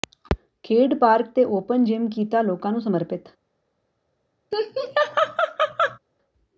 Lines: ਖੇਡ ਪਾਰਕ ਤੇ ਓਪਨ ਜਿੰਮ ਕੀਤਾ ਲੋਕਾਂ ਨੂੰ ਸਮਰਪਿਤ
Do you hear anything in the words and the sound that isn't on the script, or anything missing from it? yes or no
yes